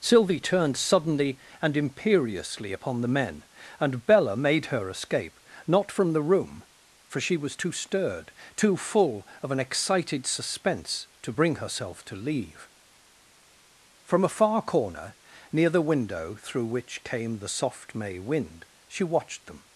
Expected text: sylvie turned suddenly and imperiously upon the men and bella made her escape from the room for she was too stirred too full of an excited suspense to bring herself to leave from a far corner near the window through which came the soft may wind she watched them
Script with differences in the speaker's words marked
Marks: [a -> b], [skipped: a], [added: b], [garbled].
sylvie turned suddenly and imperiously upon the men and bella made her escape [added: not] from the room for she was too stirred too full of an excited suspense to bring herself to leave from a far corner near the window through which came the soft may wind she watched them